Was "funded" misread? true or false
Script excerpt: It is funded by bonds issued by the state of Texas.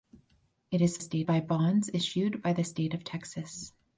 true